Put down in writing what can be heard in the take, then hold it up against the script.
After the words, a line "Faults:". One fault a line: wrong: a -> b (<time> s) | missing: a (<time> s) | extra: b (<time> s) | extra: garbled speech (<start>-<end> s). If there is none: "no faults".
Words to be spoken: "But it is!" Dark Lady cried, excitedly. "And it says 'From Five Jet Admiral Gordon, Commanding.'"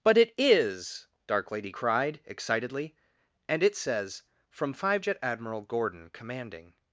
"But it is!" Dark Lady cried, excitedly. "And it says 'From Five Jet Admiral Gordon, Commanding.'"
Faults:
no faults